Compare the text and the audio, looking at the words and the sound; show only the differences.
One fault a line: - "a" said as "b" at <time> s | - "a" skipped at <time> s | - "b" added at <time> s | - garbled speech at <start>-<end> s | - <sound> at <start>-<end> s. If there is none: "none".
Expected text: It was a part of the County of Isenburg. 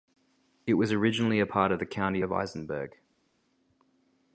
- "originally" added at 0.9 s